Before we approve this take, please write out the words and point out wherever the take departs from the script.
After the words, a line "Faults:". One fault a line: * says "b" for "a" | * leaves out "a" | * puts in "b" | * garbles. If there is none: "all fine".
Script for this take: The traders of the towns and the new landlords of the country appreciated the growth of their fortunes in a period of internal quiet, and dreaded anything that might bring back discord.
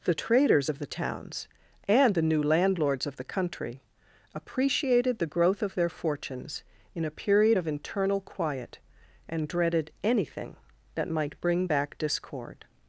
The traders of the towns and the new landlords of the country appreciated the growth of their fortunes in a period of internal quiet, and dreaded anything that might bring back discord.
Faults:
all fine